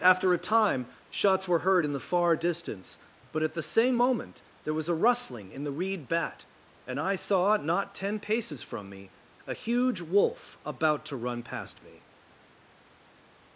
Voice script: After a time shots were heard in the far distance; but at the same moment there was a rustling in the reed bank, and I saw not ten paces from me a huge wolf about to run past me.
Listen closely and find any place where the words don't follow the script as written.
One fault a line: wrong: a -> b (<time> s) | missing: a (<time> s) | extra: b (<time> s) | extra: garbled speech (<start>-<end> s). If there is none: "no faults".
wrong: bank -> bat (6.1 s)